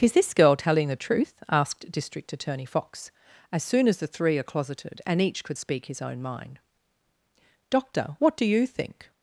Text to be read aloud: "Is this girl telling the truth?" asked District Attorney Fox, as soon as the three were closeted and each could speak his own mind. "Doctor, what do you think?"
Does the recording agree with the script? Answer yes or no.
no